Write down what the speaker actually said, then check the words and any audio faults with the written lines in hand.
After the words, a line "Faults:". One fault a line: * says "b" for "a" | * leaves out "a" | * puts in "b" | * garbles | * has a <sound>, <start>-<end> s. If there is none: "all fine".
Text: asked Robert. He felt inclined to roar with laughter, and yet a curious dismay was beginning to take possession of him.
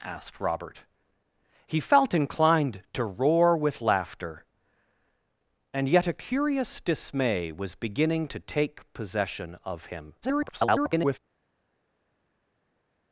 asked Robert. He felt inclined to roar with laughter, and yet a curious dismay was beginning to take possession of him. [garbled]
Faults:
* garbles